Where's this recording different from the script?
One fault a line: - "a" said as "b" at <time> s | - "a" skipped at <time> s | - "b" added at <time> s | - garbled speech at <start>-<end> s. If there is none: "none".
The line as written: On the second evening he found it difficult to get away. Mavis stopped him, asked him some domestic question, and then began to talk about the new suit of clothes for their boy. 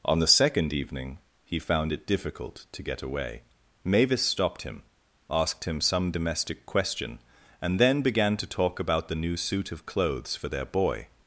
none